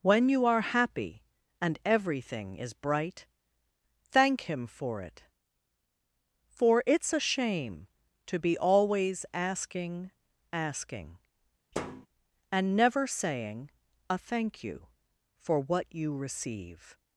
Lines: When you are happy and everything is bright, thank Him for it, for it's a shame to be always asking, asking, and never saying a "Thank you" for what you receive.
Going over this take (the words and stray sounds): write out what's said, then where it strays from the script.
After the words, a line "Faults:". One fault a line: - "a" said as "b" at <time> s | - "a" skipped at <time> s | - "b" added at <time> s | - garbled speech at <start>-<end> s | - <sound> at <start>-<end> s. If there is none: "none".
When you are happy and everything is bright, thank Him for it, for it's a shame to be always asking, asking, and never saying a "Thank you" for what you receive.
Faults:
- thud at 11.7-12.1 s